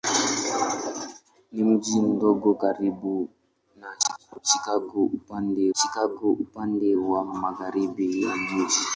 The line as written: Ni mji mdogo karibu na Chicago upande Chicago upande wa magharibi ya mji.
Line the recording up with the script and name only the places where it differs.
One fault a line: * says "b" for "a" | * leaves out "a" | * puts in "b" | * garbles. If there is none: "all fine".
all fine